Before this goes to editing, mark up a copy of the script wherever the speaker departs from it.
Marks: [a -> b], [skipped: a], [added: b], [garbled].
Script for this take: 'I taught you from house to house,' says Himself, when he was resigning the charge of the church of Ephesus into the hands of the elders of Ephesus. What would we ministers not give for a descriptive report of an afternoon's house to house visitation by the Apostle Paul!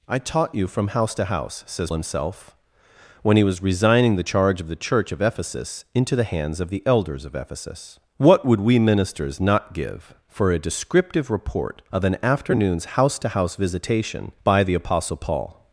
'I taught you from house to house,' says Himself, when he was resigning the charge of the church of Ephesus into the hands of the elders of Ephesus. What would we ministers not give for a descriptive report of an afternoon's house to house visitation by the Apostle Paul!